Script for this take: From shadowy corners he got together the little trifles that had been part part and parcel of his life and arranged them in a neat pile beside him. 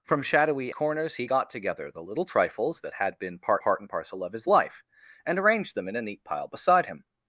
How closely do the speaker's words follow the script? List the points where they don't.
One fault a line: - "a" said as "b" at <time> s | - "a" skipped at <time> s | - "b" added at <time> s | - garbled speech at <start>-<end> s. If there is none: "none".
none